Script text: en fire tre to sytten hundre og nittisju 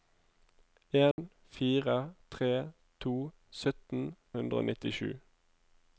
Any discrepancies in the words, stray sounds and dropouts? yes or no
yes